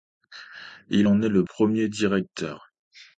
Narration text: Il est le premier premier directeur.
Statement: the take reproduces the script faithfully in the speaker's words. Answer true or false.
false